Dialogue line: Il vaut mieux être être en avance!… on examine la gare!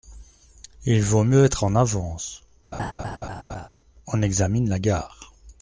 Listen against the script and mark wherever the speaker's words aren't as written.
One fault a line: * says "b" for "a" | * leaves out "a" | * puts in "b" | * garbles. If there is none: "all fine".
* leaves out "être"